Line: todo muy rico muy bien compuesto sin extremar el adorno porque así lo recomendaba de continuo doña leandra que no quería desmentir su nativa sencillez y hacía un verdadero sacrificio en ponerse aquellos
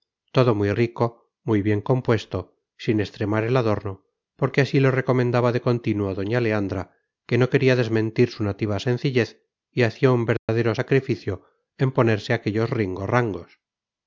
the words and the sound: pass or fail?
fail